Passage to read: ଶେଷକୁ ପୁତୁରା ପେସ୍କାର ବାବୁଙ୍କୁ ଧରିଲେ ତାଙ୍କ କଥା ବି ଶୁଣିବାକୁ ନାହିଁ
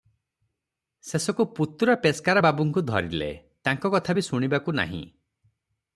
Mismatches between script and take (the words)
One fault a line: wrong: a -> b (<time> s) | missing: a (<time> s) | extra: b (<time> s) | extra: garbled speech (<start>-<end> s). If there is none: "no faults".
no faults